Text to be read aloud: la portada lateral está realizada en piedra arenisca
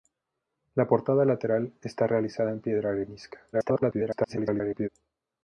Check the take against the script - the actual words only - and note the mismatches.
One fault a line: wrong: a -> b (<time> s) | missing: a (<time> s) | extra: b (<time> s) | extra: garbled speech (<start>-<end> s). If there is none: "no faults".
extra: garbled speech (3.5-4.9 s)